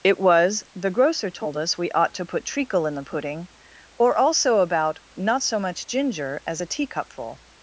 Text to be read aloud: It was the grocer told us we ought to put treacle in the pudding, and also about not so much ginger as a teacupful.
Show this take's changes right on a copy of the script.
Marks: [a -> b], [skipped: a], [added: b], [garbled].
It was the grocer told us we ought to put treacle in the pudding, [and -> or] also about not so much ginger as a teacupful.